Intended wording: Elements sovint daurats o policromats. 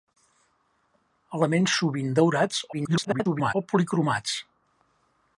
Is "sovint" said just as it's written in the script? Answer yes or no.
yes